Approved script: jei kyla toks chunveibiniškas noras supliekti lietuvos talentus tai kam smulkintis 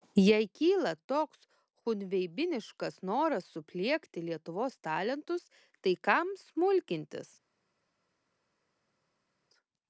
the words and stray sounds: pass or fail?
pass